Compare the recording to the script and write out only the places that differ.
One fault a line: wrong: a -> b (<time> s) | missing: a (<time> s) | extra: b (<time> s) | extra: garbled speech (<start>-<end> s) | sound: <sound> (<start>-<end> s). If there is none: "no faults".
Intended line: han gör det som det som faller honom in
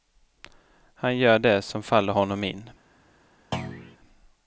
missing: det som (1.8 s)
sound: thud (3.5-4.0 s)